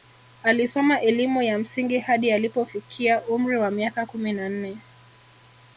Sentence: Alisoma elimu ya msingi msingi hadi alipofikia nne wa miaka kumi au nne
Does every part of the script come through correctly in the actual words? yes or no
no